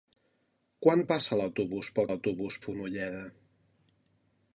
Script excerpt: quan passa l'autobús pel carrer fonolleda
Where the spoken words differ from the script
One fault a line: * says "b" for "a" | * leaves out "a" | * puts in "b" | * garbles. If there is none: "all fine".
* says "l'autobús" for "carrer"